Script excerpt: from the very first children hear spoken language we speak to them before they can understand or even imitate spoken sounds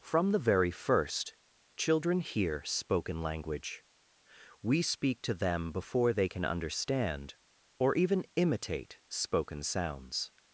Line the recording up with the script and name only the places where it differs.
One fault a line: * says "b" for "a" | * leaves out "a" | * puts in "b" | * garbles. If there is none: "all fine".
all fine